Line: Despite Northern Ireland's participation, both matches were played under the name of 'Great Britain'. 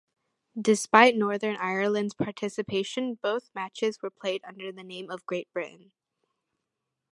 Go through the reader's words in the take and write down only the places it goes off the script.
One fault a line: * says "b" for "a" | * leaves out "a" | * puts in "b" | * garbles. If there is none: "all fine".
all fine